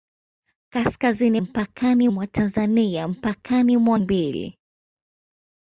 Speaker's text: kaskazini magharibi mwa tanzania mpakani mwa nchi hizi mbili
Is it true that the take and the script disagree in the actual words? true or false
true